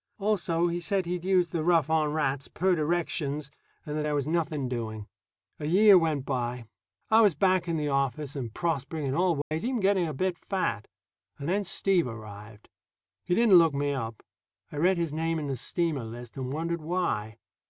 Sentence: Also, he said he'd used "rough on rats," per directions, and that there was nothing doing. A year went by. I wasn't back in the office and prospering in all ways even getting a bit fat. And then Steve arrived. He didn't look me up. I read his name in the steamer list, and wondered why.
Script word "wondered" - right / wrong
right